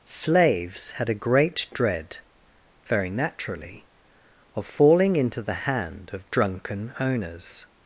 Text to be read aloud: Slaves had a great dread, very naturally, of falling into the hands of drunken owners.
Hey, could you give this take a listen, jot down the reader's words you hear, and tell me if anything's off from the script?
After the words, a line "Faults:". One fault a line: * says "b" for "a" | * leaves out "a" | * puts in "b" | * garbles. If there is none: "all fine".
Slaves had a great dread, very naturally, of falling into the hand of drunken owners.
Faults:
* says "hand" for "hands"